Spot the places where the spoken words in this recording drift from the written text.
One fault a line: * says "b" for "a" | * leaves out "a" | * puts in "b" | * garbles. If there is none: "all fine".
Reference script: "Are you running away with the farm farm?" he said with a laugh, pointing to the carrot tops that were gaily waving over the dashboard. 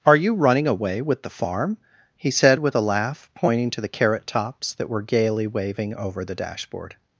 * leaves out "farm"